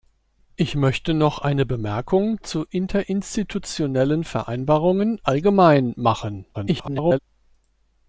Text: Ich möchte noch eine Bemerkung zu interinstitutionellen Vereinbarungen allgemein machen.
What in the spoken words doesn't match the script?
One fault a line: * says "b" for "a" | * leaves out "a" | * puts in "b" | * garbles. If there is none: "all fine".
* garbles